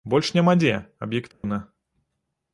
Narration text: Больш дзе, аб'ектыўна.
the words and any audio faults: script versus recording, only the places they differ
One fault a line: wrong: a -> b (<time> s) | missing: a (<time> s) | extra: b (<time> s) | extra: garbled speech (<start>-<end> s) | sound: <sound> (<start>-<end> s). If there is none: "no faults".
extra: няма (0.3 s)
sound: dropout (1.3-1.4 s)